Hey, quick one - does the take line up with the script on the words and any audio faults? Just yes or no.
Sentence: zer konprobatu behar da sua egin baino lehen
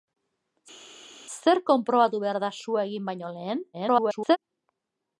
no